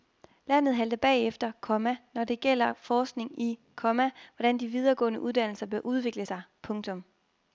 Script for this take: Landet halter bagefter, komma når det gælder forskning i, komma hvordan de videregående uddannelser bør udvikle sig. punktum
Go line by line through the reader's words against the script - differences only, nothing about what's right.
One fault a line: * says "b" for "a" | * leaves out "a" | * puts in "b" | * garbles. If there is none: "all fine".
all fine